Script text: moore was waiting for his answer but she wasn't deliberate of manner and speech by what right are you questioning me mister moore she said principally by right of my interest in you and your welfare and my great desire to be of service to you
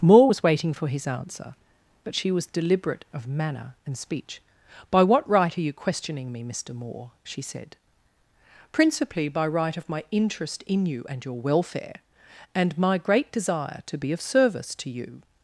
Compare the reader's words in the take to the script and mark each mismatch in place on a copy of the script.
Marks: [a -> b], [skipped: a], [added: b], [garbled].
moore was waiting for his answer but she [wasn't -> was] deliberate of manner and speech by what right are you questioning me mister moore she said principally by right of my interest in you and your welfare and my great desire to be of service to you